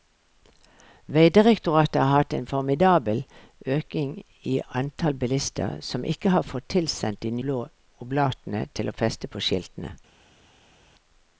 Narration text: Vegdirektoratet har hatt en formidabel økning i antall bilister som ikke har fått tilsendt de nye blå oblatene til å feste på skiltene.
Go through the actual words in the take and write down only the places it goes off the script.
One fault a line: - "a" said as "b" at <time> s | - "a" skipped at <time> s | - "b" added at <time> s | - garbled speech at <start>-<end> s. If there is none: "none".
- "nye" skipped at 7.3 s